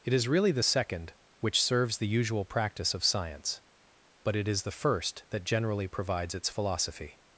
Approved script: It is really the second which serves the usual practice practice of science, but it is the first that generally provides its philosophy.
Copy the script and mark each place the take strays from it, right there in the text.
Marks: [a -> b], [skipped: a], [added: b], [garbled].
It is really the second which serves the usual practice [skipped: practice] of science, but it is the first that generally provides its philosophy.